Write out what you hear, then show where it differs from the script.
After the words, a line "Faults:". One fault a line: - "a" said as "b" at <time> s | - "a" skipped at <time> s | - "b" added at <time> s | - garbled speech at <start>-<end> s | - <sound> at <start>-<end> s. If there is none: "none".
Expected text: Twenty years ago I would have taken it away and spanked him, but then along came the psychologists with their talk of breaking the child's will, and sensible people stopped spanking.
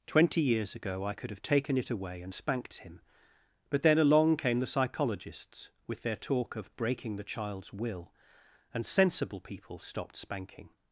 Twenty years ago I could have taken it away and spanked him, but then along came the psychologists with their talk of breaking the child's will, and sensible people stopped spanking.
Faults:
- "would" said as "could" at 1.1 s